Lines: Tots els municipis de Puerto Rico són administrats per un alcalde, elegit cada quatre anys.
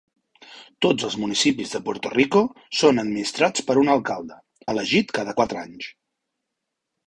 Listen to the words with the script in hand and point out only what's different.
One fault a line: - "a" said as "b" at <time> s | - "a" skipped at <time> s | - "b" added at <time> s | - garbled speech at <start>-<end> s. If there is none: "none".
none